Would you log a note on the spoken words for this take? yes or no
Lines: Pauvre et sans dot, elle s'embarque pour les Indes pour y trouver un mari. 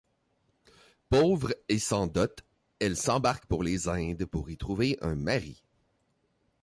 no